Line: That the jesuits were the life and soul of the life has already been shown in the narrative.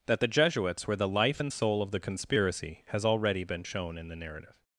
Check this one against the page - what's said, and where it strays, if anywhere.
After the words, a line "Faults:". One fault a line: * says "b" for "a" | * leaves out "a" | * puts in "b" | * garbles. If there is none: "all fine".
That the jesuits were the life and soul of the conspiracy has already been shown in the narrative.
Faults:
* says "conspiracy" for "life"